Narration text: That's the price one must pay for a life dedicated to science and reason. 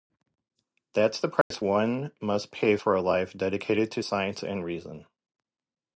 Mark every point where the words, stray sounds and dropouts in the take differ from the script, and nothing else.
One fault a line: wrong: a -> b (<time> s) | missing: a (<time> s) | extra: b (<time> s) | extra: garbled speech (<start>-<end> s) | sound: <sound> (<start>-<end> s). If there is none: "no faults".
sound: dropout (1.4-1.5 s)